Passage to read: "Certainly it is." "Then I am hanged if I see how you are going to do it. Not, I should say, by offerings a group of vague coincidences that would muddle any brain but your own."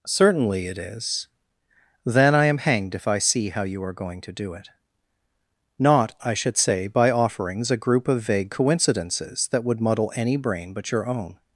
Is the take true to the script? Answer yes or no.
yes